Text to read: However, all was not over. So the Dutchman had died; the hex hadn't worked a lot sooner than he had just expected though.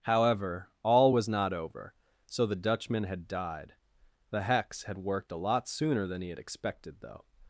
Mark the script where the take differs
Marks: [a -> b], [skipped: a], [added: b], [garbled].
However, all was not over. So the Dutchman had died; the hex [hadn't -> had] worked a lot sooner than he had [skipped: just] expected though.